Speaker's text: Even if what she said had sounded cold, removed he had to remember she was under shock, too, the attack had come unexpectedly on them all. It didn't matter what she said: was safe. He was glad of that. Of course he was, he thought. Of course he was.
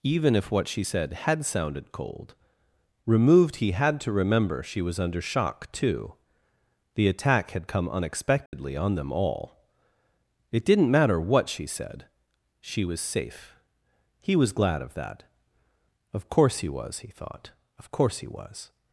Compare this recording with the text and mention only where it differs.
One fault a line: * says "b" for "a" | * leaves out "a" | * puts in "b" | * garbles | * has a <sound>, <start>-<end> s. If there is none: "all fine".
* has a dropout, 8.5-8.5 s
* puts in "she"